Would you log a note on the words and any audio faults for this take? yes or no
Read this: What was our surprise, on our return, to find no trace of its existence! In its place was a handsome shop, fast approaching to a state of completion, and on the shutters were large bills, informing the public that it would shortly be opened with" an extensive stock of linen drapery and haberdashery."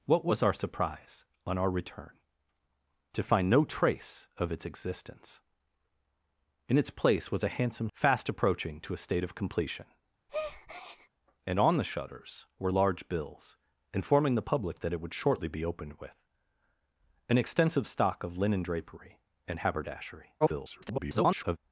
yes